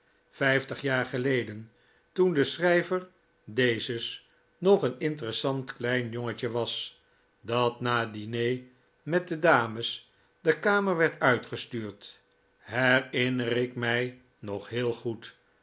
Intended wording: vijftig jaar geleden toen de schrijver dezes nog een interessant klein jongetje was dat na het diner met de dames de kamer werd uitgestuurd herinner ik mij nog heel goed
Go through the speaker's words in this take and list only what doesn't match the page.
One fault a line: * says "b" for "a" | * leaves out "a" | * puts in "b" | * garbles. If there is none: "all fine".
all fine